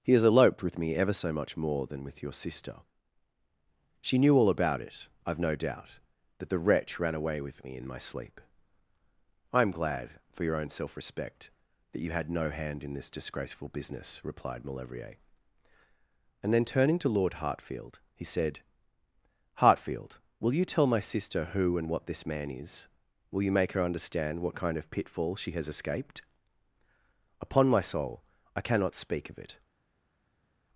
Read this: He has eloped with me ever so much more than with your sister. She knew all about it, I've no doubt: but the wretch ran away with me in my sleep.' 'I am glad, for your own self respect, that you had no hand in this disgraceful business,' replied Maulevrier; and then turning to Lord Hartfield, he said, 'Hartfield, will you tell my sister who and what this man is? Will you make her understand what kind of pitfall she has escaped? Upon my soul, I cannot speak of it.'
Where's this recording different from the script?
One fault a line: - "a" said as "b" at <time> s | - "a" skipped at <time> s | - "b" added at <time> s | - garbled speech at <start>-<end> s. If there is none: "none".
- "but" said as "that" at 6.4 s